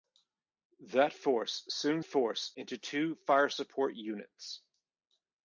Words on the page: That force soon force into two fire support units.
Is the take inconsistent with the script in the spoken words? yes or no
no